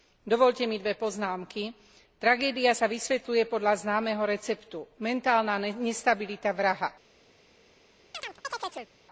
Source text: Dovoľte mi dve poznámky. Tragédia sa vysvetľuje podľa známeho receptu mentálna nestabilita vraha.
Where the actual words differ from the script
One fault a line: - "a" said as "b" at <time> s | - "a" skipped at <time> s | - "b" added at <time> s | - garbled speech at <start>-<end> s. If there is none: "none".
none